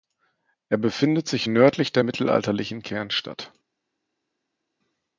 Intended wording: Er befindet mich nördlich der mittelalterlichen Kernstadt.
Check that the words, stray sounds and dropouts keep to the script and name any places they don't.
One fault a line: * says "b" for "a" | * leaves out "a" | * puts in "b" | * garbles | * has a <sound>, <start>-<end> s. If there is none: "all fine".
* says "sich" for "mich"